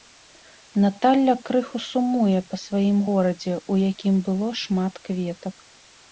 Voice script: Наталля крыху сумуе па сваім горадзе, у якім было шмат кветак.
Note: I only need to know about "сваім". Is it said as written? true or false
true